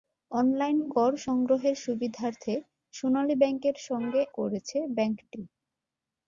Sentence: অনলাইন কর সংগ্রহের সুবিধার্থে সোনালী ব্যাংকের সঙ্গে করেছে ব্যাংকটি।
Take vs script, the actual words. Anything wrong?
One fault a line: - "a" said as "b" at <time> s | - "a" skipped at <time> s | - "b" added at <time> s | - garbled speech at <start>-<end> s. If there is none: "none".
none